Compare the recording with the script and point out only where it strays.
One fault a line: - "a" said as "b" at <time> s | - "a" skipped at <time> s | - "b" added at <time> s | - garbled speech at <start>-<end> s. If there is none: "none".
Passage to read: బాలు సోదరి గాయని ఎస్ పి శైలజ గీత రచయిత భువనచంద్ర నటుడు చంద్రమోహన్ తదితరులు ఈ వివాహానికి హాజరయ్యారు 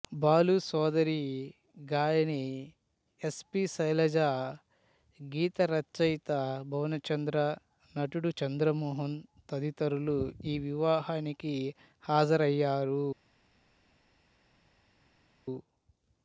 none